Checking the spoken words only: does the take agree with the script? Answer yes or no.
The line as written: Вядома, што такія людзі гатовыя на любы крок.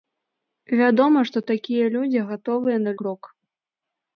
no